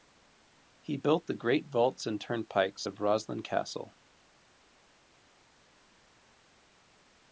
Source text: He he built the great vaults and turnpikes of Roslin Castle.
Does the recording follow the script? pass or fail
fail